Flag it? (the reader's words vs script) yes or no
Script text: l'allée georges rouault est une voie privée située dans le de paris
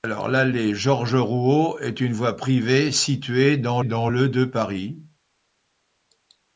yes